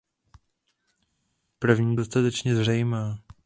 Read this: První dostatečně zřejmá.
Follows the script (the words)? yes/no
yes